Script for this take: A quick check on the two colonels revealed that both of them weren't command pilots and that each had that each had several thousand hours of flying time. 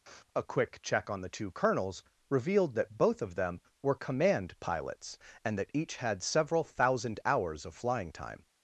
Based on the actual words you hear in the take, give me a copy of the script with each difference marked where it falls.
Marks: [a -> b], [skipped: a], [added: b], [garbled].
A quick check on the two colonels revealed that both of them [weren't -> were] command pilots and that each had [skipped: that each had] several thousand hours of flying time.